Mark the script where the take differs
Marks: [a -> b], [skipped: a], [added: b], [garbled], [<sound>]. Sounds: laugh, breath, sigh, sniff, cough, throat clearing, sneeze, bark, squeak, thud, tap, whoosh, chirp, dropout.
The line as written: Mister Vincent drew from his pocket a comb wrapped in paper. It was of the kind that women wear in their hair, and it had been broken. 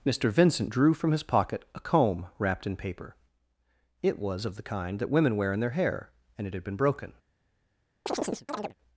Mister Vincent drew from his pocket a comb wrapped in paper. It was of the kind that women wear in their hair, and it had been broken. [chirp]